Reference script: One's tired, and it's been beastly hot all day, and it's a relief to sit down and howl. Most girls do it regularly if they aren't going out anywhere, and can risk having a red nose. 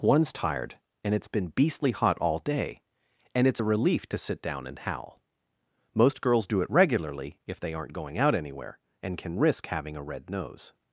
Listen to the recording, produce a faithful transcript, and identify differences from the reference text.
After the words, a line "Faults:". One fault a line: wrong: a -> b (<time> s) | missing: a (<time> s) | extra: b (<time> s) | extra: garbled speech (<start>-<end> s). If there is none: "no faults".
One's tired, and it's been beastly hot all day, and it's a relief to sit down and howl. Most girls do it regularly if they aren't going out anywhere, and can risk having a red nose.
Faults:
no faults